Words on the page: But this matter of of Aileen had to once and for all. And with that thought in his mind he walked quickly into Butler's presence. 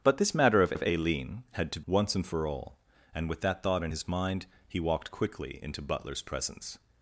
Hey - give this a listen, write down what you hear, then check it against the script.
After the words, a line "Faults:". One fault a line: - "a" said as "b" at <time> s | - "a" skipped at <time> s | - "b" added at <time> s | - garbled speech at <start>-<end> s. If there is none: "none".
But this matter of of Aileen had to once and for all. And with that thought in his mind he walked quickly into Butler's presence.
Faults:
none